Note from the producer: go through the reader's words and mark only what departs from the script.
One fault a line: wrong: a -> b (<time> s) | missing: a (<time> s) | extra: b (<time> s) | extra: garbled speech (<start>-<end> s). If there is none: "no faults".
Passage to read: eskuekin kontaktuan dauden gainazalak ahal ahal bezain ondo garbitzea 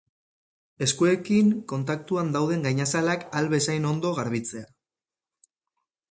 missing: ahal (3.5 s)